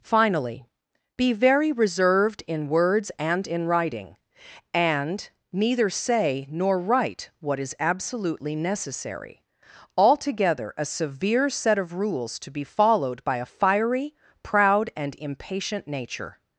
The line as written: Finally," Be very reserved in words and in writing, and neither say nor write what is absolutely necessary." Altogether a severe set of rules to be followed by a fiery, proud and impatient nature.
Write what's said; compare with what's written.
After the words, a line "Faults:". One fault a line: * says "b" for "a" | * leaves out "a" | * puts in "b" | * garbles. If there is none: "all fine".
Finally," Be very reserved in words and in writing, and neither say nor write what is absolutely necessary." Altogether a severe set of rules to be followed by a fiery, proud and impatient nature.
Faults:
all fine